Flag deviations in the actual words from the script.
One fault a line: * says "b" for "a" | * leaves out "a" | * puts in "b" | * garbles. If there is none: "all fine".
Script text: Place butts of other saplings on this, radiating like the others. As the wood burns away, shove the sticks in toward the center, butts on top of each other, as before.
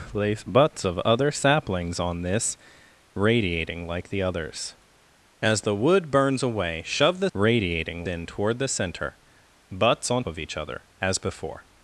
* says "radiating" for "sticks"
* leaves out "top"